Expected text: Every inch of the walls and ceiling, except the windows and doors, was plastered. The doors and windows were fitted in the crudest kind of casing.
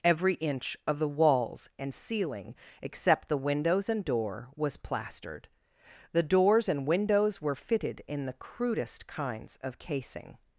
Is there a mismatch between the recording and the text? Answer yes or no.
yes